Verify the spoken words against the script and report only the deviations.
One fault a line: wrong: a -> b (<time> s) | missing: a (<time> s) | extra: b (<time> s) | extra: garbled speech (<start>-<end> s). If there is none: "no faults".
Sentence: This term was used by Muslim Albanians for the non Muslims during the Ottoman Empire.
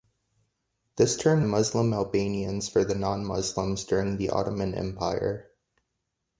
missing: was used by (1.4 s)